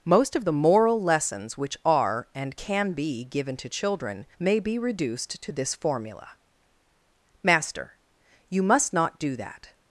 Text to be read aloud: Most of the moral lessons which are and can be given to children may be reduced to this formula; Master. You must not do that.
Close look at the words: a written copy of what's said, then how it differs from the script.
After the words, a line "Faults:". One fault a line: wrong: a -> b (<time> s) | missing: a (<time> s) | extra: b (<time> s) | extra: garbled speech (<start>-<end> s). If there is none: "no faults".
Most of the moral lessons which are and can be given to children may be reduced to this formula; Master. You must not do that.
Faults:
no faults